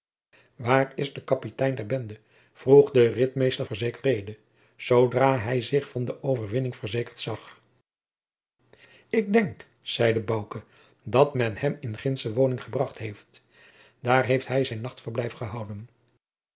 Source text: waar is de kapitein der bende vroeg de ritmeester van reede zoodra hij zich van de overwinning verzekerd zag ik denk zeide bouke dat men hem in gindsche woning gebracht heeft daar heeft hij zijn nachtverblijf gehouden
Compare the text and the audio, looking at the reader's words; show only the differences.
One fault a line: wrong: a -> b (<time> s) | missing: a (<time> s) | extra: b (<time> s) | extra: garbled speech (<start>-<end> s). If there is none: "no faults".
wrong: van -> verzekerd (3.6 s)